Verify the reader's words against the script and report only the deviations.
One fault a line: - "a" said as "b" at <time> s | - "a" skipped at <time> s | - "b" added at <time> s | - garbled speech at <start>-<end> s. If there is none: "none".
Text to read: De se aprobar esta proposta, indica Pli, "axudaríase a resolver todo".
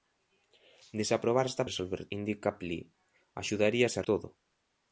- "proposta" said as "resolver" at 1.7 s
- "resolver" skipped at 4.1 s